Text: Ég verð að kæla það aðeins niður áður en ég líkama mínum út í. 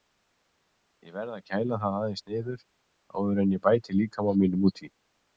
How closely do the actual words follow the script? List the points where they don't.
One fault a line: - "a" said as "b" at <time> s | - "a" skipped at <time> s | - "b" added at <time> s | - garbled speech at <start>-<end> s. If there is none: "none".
- "bæti" added at 3.7 s